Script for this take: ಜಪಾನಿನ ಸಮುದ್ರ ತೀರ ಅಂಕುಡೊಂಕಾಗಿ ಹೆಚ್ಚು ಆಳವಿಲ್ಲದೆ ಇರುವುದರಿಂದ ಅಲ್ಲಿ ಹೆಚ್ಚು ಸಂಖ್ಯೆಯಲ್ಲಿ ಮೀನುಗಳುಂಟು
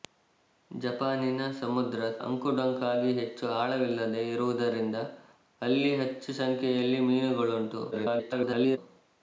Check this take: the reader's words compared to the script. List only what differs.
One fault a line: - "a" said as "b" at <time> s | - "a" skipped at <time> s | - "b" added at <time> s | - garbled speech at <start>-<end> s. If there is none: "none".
- "ತೀರ" skipped at 2.0 s
- garbled speech at 7.9-8.8 s